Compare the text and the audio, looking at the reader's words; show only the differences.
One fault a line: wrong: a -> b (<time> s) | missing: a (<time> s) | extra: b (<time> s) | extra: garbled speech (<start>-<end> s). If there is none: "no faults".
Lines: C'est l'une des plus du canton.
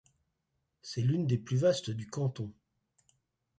extra: vastes (1.6 s)